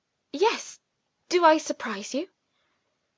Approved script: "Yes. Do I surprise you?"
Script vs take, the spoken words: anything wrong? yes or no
no